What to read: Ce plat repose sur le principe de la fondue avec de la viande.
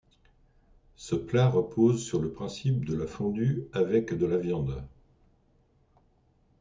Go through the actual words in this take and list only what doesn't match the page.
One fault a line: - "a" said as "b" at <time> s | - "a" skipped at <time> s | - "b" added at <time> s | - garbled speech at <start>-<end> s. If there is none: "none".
none